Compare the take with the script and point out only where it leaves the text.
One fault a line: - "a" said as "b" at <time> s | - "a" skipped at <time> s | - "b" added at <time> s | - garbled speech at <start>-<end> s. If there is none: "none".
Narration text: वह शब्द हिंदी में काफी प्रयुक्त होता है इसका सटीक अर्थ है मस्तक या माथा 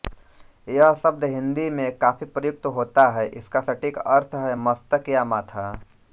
- "वह" said as "यह" at 0.7 s